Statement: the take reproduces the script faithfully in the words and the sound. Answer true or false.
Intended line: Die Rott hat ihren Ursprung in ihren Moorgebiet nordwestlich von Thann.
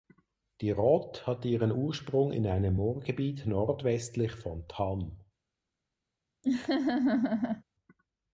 false